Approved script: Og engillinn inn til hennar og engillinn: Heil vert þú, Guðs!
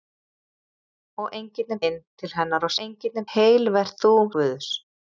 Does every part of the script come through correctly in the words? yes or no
yes